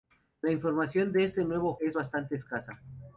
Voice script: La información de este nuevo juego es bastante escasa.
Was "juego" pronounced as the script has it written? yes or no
no